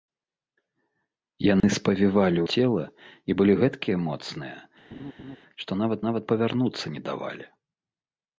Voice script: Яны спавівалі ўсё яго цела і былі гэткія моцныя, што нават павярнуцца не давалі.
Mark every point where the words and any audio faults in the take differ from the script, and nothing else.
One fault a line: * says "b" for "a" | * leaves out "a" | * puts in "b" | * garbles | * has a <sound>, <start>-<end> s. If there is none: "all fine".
* has a dropout, 1.6-1.6 s
* leaves out "ўсё яго"
* has a laugh, 4.9-5.4 s
* puts in "нават"